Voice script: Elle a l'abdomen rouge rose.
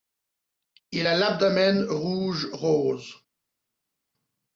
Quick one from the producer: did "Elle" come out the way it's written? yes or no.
no